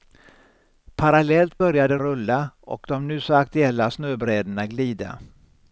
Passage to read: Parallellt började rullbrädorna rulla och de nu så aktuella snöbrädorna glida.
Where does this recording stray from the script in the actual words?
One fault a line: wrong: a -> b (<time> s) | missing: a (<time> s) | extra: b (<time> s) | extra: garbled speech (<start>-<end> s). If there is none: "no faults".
missing: rullbrädorna (2.0 s)